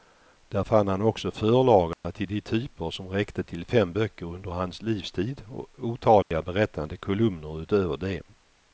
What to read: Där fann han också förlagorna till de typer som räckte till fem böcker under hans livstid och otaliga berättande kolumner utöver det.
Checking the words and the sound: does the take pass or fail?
fail